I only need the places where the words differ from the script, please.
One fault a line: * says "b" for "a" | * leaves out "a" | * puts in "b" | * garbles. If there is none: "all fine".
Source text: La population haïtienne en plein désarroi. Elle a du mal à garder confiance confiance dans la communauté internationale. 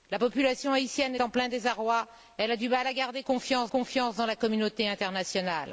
all fine